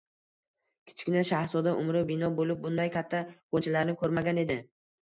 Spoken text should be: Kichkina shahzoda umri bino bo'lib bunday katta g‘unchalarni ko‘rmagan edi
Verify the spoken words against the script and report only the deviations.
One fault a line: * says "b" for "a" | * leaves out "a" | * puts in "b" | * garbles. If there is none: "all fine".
all fine